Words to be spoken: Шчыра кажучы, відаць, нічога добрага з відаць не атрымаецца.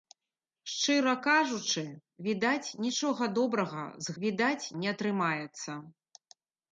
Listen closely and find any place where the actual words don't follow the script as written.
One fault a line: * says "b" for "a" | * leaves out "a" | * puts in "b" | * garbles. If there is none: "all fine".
all fine